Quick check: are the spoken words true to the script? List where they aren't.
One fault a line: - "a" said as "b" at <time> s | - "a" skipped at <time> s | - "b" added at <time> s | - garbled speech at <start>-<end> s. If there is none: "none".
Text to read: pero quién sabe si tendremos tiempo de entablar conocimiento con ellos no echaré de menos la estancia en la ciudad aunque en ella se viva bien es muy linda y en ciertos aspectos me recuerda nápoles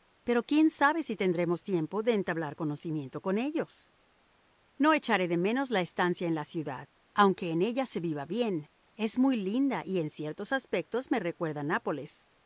none